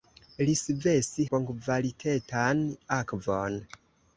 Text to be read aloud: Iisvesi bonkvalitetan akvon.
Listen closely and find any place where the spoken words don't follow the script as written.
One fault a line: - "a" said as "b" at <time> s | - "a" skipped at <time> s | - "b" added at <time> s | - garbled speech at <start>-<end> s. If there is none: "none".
none